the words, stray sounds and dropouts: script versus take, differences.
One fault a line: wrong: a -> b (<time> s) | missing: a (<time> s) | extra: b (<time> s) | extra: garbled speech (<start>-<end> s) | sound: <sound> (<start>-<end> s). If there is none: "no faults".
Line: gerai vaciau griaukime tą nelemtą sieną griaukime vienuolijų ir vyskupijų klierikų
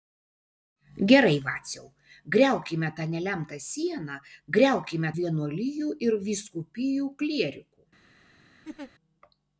sound: laugh (8.6-8.9 s)